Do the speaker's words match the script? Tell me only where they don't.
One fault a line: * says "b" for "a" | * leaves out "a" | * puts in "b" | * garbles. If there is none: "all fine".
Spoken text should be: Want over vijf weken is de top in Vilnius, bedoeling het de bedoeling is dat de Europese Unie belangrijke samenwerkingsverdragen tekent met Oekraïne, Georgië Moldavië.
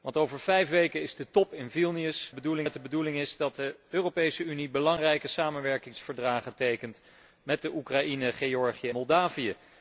all fine